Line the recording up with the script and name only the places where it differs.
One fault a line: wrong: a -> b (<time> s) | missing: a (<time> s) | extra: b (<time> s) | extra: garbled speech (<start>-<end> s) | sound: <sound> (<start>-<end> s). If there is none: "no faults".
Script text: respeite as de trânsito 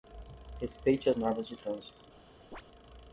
extra: normas (1.2 s)
sound: chirp (2.5-2.6 s)